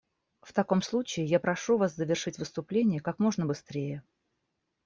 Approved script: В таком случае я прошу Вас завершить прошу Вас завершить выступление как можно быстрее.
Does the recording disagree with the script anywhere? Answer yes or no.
yes